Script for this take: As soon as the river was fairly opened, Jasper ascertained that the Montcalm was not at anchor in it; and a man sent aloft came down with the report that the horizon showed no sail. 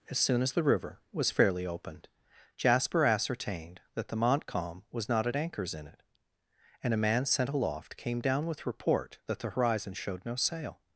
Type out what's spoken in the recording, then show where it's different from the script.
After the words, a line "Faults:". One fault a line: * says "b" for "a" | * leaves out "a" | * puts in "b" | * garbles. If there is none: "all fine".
As soon as the river was fairly opened, Jasper ascertained that the Montcalm was not at anchors in it; and a man sent aloft came down with report that the horizon showed no sail.
Faults:
* says "anchors" for "anchor"
* leaves out "the"